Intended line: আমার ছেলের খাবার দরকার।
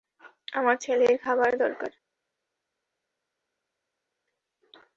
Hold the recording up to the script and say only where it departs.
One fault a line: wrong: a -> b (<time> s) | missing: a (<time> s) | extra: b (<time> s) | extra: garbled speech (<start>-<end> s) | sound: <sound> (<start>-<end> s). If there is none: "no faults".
no faults